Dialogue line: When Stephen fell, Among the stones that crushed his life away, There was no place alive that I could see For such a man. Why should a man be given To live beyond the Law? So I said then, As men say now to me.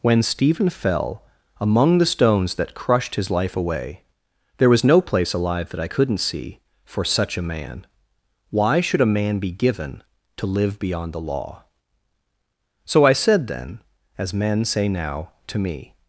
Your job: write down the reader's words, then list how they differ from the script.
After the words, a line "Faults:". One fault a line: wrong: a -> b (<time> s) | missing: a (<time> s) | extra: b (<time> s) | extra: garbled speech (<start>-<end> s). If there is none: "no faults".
When Stephen fell, Among the stones that crushed his life away, There was no place alive that I couldn't see For such a man. Why should a man be given To live beyond the Law? So I said then, As men say now to me.
Faults:
wrong: could -> couldn't (5.9 s)